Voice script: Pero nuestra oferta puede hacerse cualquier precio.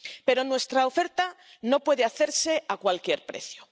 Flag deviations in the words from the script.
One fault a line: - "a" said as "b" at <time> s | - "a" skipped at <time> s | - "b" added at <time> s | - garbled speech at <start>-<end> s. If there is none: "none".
- "no" added at 1.6 s
- "a" added at 2.7 s